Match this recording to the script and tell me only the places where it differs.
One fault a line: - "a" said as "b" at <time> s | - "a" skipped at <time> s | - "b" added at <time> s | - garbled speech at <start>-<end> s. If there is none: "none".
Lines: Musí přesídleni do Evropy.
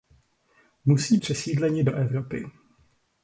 none